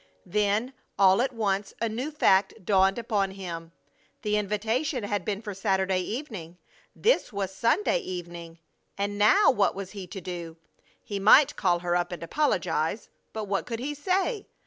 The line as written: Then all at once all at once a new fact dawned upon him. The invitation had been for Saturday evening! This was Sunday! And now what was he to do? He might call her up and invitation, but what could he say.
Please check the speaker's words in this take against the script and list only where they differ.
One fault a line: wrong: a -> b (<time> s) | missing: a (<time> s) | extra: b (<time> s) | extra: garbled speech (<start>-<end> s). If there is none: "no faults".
missing: all at once (1.8 s)
extra: evening (8.0 s)
wrong: invitation -> apologize (12.2 s)